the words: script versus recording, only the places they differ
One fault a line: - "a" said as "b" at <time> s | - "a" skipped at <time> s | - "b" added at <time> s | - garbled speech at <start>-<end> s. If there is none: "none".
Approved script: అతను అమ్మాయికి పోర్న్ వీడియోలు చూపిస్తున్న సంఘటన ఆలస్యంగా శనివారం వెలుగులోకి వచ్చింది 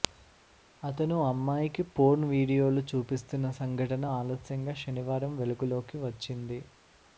none